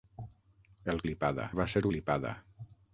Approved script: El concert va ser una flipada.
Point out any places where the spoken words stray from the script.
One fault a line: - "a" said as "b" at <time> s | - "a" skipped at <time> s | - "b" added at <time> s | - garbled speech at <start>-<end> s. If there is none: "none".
- "concert" said as "flipada" at 1.0 s
- "una" skipped at 1.8 s